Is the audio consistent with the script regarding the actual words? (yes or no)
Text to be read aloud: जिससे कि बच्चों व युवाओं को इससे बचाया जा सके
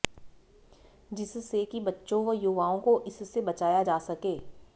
yes